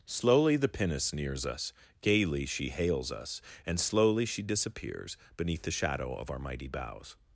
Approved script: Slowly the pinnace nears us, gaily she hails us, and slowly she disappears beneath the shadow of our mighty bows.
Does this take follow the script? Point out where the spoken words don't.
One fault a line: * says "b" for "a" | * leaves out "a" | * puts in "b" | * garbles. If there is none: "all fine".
all fine